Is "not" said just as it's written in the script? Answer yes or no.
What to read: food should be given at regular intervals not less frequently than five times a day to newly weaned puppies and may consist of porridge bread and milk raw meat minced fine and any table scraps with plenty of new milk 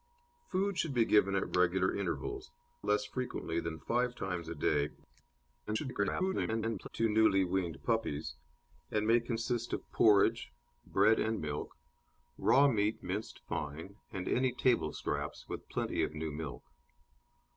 no